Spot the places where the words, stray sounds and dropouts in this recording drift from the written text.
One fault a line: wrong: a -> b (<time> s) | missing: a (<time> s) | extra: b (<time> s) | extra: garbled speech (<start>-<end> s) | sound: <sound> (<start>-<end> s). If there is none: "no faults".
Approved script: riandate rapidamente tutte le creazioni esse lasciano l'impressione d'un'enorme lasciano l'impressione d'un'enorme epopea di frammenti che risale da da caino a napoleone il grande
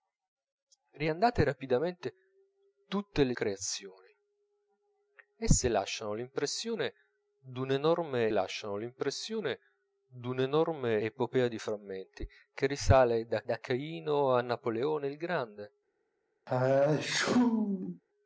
sound: sneeze (16.5-18.0 s)